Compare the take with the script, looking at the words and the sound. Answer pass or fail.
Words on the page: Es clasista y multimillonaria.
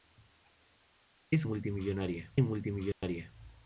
fail